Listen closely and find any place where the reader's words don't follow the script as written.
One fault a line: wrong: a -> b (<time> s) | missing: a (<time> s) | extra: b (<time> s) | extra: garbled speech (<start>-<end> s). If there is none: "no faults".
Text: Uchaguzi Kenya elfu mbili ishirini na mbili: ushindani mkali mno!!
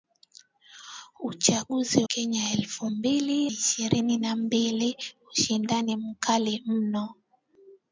no faults